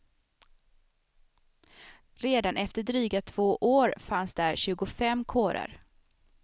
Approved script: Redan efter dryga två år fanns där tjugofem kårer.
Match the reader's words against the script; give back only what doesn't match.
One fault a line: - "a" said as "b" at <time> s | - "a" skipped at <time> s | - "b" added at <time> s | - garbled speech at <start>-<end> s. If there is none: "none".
none